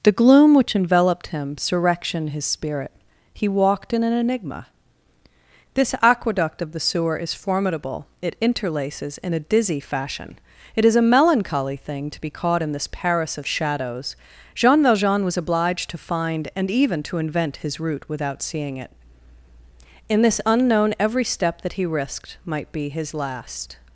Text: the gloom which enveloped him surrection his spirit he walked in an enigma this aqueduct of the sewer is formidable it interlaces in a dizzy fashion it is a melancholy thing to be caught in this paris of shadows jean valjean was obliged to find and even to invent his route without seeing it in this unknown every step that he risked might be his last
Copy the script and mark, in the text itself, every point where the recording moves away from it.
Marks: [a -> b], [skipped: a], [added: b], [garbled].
the gloom which enveloped him surrection his spirit he walked in an enigma this aqueduct of the sewer is formidable it interlaces in a dizzy fashion it is a melancholy thing to be caught in this paris of shadows jean valjean was obliged to find and even to invent his route without seeing it in this unknown every step that he risked might be his last